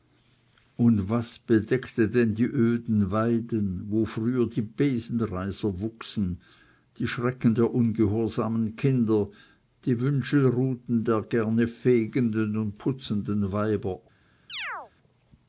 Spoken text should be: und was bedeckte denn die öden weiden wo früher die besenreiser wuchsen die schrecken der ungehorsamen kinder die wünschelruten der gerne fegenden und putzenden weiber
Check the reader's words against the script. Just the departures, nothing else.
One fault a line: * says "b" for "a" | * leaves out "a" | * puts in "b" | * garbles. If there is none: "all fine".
all fine